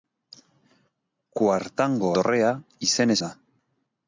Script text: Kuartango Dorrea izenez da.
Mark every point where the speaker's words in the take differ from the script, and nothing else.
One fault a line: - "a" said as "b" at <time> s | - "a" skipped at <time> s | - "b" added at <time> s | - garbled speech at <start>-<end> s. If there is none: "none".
none